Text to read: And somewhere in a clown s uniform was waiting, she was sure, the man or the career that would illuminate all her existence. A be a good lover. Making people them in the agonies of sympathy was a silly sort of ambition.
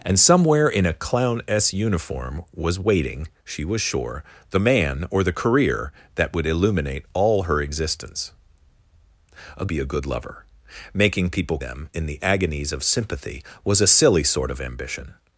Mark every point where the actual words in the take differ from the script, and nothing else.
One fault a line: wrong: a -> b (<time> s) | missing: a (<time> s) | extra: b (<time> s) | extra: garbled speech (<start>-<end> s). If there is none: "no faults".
no faults